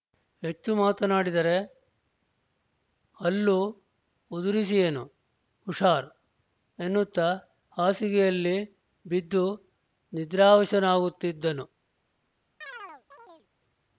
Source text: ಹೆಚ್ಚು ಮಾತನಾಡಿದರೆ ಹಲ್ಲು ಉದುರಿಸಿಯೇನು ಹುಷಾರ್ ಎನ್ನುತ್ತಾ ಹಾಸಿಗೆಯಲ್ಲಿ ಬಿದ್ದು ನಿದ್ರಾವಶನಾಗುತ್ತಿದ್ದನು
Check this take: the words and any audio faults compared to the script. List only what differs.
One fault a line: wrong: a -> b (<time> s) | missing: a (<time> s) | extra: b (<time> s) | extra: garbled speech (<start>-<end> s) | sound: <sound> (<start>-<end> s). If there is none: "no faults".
sound: chirp (12.6-13.5 s)